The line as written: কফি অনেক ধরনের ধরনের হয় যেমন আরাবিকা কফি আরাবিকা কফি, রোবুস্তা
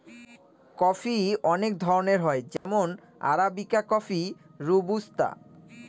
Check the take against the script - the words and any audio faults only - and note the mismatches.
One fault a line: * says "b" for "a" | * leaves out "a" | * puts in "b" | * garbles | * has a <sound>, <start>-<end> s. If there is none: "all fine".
* leaves out "ধরনের"
* has a dropout, 2.6-2.7 s
* leaves out "আরাবিকা কফি"